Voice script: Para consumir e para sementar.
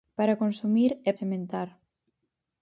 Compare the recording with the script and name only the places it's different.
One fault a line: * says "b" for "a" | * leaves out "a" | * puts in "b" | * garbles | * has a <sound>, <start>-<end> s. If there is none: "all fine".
* leaves out "para"